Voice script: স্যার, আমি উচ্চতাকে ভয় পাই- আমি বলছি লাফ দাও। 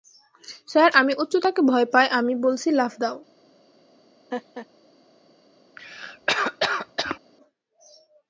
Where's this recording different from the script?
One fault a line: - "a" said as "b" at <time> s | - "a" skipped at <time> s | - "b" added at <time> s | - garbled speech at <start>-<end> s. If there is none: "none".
none